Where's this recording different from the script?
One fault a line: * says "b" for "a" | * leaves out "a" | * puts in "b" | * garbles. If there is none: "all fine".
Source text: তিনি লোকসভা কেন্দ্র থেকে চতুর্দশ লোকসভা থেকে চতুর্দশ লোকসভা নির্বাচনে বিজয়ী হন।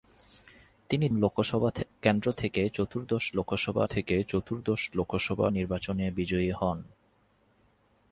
all fine